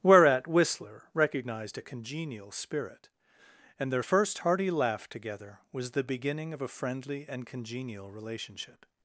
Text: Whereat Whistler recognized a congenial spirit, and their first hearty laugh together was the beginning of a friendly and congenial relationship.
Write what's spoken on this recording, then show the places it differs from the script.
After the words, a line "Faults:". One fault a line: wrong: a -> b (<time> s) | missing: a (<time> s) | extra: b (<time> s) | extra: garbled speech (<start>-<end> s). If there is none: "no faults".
Whereat Whistler recognized a congenial spirit, and their first hearty laugh together was the beginning of a friendly and congenial relationship.
Faults:
no faults